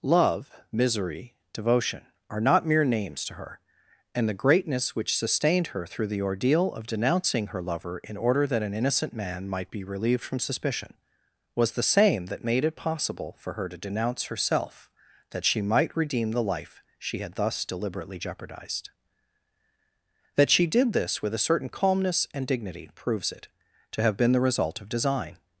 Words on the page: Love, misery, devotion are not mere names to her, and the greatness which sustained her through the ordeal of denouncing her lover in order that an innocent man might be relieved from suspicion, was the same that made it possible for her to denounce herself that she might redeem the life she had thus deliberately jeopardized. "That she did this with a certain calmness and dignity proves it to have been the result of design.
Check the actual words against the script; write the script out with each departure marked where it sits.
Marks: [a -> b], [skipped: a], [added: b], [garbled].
Love, misery, devotion are not mere names to her, and the greatness which sustained her through the ordeal of denouncing her lover in order that an innocent man might be relieved from suspicion, was the same that made it possible for her to denounce herself that she might redeem the life she had thus deliberately jeopardized. "That she did this with a certain calmness and dignity proves it to have been the result of design.